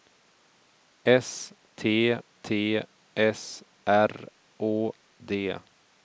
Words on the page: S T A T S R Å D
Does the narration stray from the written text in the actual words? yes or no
yes